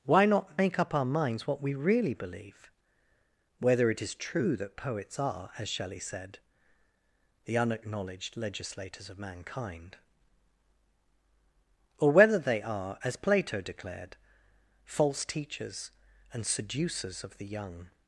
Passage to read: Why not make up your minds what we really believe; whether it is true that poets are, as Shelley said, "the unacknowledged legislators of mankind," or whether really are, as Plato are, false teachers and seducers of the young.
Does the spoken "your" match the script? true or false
false